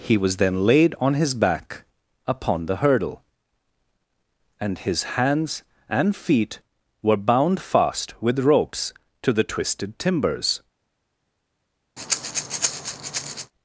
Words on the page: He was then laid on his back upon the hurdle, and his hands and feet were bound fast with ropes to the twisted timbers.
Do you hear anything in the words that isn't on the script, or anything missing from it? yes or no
no